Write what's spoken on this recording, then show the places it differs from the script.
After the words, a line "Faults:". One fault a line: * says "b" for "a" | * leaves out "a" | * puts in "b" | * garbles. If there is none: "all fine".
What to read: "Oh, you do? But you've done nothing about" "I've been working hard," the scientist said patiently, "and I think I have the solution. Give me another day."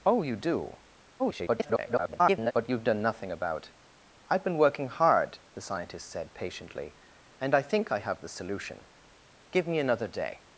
"Oh, you do? [garbled] But you've done nothing about" "I've been working hard," the scientist said patiently, "and I think I have the solution. Give me another day."
Faults:
* garbles